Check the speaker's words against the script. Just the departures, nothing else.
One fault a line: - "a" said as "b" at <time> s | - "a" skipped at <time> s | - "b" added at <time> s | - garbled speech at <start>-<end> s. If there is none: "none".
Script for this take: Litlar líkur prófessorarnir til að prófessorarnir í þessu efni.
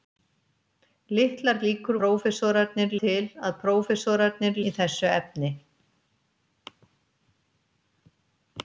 none